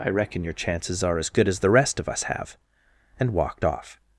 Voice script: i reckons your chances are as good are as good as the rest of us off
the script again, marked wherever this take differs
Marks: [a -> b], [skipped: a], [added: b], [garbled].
i [reckons -> reckon] your chances are as good [skipped: are] as [skipped: good as] the rest of us [added: have and walked] off